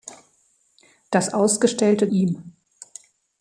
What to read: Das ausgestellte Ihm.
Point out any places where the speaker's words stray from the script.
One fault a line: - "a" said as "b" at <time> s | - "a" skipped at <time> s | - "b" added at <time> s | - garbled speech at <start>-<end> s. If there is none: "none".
none